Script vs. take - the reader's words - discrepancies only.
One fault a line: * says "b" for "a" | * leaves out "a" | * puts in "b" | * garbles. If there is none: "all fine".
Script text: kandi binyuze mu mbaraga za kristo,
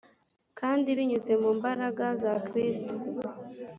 all fine